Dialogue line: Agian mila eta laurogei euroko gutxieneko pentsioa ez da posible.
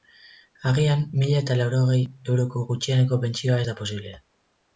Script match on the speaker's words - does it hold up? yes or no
yes